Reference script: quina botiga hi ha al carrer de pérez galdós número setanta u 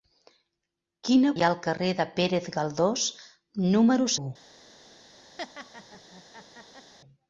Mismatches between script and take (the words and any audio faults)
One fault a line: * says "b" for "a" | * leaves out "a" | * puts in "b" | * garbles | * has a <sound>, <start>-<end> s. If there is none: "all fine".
* leaves out "botiga"
* leaves out "setanta"
* has a laugh, 5.4-6.9 s